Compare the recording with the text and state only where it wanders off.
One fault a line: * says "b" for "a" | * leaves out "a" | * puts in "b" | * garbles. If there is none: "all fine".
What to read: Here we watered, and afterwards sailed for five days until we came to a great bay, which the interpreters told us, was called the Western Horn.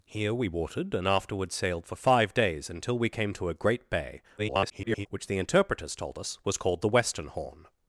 * garbles